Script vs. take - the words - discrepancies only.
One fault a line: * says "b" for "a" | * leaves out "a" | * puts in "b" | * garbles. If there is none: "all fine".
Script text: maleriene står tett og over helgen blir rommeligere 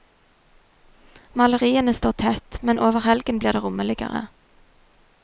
* says "men" for "og"
* puts in "det"